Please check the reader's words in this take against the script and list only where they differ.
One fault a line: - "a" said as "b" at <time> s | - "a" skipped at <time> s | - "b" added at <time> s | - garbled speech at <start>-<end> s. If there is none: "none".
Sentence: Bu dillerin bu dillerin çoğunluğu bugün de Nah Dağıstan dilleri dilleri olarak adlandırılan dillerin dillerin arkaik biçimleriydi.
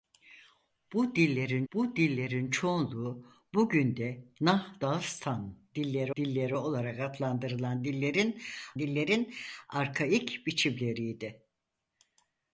none